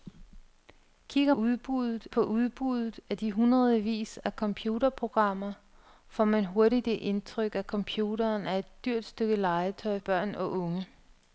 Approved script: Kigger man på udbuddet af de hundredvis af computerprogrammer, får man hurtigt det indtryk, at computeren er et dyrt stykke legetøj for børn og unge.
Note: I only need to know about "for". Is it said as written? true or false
false